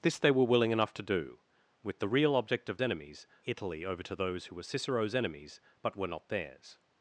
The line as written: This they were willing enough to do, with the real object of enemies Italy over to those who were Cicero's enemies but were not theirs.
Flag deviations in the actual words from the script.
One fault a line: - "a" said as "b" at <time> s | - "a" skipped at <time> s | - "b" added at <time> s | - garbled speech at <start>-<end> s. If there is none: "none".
none